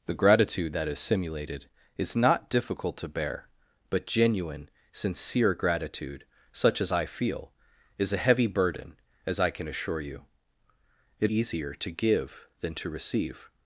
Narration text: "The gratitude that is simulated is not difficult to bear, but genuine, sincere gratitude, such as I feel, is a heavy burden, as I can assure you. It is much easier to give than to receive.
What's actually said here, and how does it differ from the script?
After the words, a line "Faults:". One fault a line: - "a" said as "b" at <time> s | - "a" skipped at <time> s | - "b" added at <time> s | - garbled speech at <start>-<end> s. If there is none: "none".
"The gratitude that is simulated is not difficult to bear, but genuine, sincere gratitude, such as I feel, is a heavy burden, as I can assure you. It easier to give than to receive.
Faults:
- "is much" skipped at 11.3 s